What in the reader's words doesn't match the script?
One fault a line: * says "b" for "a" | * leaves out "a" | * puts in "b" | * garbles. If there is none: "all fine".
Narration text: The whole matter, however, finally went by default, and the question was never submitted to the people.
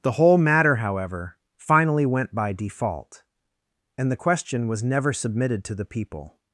all fine